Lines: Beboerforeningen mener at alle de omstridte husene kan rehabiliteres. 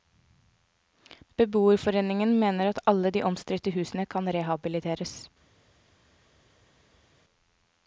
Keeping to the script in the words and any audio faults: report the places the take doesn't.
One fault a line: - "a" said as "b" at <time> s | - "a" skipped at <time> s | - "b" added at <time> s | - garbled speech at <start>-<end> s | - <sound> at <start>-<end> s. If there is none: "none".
none